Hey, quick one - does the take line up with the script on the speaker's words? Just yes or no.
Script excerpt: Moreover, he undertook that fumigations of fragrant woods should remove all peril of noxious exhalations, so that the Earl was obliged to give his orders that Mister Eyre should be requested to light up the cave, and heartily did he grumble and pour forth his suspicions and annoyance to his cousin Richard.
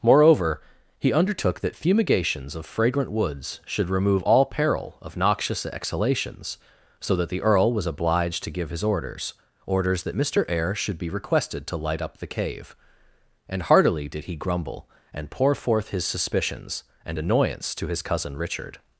no